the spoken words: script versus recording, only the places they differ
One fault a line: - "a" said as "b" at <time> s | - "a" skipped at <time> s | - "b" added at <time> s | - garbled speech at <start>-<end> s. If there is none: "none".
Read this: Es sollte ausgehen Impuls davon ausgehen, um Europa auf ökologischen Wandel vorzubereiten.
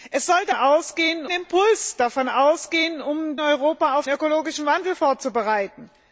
none